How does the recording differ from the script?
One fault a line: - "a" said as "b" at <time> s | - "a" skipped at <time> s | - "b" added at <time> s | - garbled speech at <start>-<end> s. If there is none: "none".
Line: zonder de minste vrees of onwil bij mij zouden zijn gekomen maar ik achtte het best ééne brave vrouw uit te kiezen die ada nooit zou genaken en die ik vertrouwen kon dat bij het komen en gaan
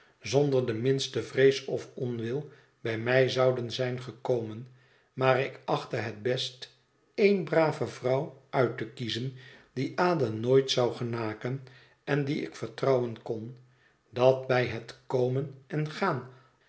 none